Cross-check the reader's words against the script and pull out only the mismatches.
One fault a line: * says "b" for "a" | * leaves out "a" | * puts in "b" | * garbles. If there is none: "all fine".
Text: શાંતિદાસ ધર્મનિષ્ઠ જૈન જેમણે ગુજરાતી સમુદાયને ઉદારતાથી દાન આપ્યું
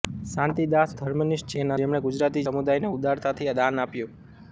all fine